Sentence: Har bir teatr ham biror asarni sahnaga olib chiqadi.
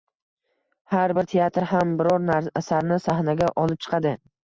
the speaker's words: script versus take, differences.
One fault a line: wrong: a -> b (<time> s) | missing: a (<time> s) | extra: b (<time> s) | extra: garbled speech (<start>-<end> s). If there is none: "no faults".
no faults